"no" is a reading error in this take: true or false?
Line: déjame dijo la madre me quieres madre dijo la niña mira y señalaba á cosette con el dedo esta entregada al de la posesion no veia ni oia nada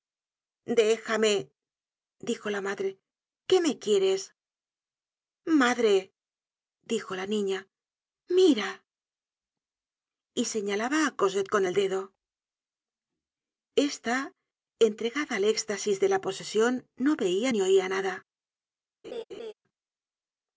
false